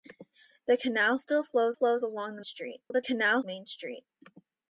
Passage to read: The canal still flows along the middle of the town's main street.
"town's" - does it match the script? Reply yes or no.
no